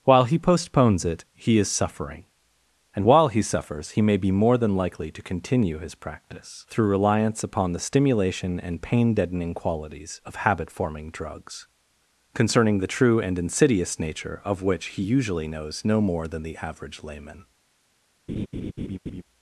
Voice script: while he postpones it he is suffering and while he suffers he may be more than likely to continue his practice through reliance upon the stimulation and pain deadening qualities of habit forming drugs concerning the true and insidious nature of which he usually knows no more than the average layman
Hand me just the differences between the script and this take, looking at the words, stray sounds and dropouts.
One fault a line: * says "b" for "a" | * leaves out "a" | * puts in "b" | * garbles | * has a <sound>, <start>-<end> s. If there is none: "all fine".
* has a laugh, 18.3-19.2 s